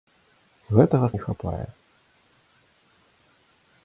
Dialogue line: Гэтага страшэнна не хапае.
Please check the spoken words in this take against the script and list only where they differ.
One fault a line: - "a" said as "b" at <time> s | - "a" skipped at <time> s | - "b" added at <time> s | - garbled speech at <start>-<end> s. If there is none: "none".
- "страшэнна" skipped at 1.1 s